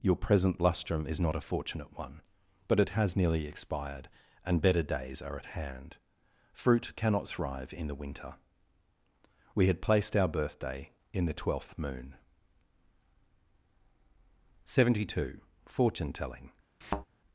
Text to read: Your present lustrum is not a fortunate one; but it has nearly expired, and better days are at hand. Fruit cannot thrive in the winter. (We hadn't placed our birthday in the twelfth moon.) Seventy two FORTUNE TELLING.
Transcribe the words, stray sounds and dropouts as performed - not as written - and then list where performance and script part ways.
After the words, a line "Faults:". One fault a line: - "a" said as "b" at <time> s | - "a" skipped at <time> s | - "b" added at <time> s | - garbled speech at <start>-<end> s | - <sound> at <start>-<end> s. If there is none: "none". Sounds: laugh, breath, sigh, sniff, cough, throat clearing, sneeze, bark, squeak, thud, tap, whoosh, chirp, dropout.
Your present lustrum is not a fortunate one; but it has nearly expired, and better days are at hand. Fruit cannot thrive in the winter. (We had placed our birthday in the twelfth moon.) Seventy two FORTUNE TELLING.
Faults:
- "hadn't" said as "had" at 9.7 s
- thud at 16.8-17.1 s